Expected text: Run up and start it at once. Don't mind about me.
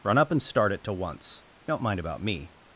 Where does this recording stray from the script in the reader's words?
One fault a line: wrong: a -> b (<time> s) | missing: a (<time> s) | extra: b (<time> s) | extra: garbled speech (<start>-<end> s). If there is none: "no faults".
wrong: at -> to (0.8 s)